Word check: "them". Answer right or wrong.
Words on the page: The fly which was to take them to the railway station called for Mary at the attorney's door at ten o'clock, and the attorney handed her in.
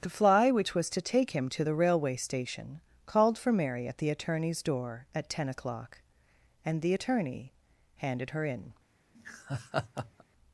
wrong